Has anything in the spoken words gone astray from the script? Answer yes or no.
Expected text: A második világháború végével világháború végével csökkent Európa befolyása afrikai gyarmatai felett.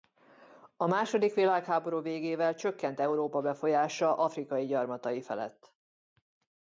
yes